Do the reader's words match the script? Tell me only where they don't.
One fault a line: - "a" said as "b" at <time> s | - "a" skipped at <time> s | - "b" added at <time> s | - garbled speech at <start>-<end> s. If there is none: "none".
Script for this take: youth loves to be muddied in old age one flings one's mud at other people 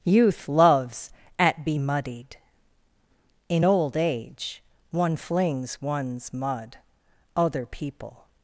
- "to" said as "at" at 1.4 s
- "at" skipped at 6.8 s